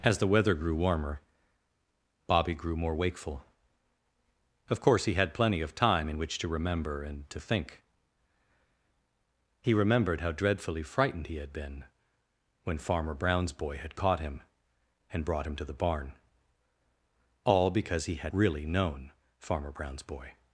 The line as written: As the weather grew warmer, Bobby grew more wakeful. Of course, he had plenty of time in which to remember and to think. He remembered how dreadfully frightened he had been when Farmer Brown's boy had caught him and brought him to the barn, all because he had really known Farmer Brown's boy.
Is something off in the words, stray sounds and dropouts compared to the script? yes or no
no